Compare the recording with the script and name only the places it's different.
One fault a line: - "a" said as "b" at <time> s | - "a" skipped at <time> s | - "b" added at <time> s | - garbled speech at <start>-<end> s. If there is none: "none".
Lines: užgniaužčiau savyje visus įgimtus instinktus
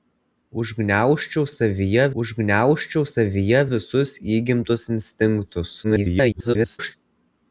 - "užgniaužčiau savyje" added at 2.2 s
- garbled speech at 5.8-6.9 s